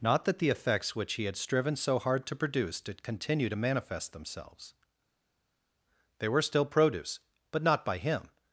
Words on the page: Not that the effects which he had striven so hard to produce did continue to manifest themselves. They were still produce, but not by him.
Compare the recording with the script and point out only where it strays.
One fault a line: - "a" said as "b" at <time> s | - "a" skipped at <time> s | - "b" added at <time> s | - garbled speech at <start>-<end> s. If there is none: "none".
none